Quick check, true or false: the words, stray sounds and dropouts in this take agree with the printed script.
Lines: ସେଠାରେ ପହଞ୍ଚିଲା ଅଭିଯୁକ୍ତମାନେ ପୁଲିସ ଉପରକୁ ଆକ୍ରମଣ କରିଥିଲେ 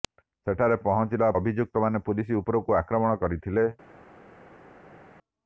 true